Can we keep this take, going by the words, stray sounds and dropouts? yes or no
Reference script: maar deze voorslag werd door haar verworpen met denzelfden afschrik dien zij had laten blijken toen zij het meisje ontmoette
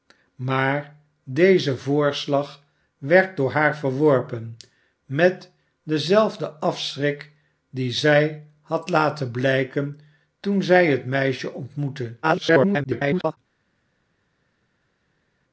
no